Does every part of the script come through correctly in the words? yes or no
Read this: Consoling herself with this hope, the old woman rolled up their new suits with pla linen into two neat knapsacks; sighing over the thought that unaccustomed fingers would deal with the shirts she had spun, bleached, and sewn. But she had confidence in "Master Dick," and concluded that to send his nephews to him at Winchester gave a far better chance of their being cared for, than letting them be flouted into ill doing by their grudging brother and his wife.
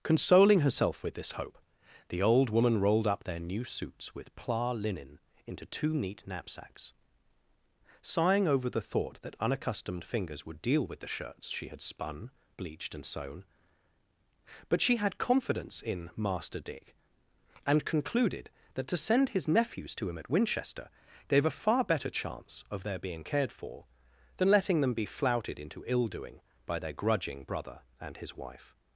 yes